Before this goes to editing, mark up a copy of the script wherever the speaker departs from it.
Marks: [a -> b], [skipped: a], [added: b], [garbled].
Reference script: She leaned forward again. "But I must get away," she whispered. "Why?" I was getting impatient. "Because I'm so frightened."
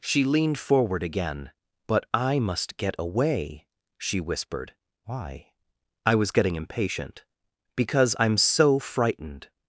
She leaned forward again. "But I must get away," she whispered. "Why?" I was getting impatient. "Because I'm so frightened."